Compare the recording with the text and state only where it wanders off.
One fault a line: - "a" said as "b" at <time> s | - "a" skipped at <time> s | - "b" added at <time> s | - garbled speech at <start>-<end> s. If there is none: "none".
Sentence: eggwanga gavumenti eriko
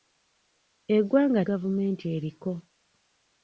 none